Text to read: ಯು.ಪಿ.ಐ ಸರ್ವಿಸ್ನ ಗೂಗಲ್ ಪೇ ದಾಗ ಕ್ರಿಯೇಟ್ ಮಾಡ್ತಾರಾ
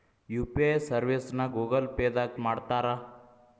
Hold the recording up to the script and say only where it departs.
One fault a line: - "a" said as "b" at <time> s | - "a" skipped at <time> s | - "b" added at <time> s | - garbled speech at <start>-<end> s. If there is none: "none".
- "ಕ್ರಿಯೇಟ್" skipped at 2.4 s